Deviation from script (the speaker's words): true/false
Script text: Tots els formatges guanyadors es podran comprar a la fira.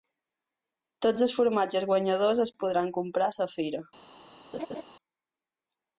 false